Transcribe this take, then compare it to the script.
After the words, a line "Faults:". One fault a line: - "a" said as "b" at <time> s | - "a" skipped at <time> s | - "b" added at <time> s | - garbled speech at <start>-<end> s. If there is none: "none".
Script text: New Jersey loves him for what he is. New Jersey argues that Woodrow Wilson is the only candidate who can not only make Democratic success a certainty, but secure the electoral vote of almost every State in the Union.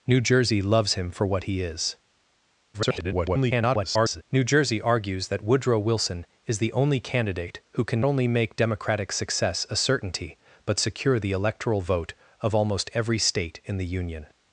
New Jersey loves him for what he is. [garbled] New Jersey argues that Woodrow Wilson is the only candidate who can only make Democratic success a certainty, but secure the electoral vote of almost every State in the Union.
Faults:
- garbled speech at 2.7-4.2 s
- "not" skipped at 8.0 s